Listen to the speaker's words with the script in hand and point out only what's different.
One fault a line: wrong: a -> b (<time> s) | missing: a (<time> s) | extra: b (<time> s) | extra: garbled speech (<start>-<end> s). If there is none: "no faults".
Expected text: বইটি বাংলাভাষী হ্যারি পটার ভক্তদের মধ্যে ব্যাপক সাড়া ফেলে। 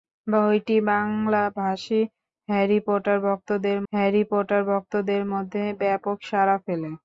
extra: হ্যারি পটার ভক্তদের (3.9 s)